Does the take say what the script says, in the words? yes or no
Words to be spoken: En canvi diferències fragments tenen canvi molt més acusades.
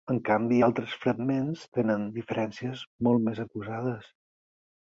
no